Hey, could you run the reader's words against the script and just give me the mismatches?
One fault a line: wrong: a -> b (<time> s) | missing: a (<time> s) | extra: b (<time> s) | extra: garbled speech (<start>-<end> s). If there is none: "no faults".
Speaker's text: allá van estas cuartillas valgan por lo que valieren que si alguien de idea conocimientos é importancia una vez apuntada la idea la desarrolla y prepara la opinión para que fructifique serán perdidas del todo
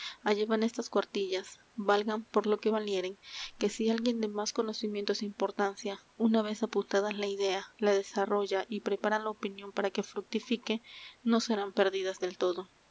wrong: idea -> más (4.4 s)
extra: no (11.2 s)